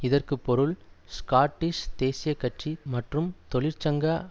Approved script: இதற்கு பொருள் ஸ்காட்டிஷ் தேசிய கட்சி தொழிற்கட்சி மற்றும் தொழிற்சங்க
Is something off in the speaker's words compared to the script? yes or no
yes